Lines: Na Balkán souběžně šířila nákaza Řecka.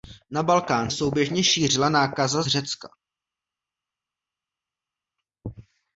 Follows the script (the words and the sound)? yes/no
yes